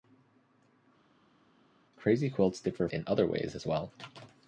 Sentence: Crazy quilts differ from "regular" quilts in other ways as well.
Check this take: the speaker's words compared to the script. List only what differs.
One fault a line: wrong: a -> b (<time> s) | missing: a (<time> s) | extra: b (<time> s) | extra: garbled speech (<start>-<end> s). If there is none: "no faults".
missing: from regular quilts (2.9 s)